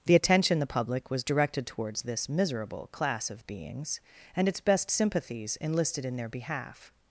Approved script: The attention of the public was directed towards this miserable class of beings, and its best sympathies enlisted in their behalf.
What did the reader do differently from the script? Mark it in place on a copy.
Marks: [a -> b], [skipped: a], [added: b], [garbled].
The attention [skipped: of] the public was directed towards this miserable class of beings, and its best sympathies enlisted in their behalf.